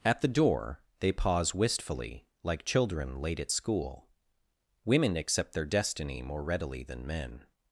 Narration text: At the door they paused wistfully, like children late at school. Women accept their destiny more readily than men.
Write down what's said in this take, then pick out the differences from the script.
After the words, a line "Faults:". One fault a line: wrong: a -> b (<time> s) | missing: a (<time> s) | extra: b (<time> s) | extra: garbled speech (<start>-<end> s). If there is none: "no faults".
At the door they pause wistfully, like children late at school. Women accept their destiny more readily than men.
Faults:
wrong: paused -> pause (1.1 s)